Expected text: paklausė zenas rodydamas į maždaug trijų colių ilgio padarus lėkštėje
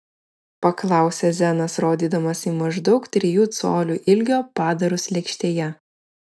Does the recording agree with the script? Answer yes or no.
yes